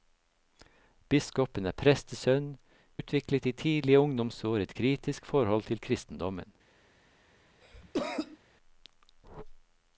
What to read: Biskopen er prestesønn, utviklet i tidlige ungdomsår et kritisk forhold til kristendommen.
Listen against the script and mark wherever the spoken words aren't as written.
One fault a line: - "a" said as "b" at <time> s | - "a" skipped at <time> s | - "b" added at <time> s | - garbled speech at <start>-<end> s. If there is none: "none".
none